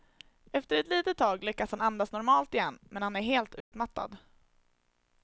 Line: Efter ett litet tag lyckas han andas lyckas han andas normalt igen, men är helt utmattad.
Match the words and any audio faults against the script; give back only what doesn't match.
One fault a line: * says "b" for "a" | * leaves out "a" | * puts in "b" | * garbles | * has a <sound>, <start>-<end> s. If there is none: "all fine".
* leaves out "lyckas han andas"
* puts in "han"
* has a dropout, 3.6-3.7 s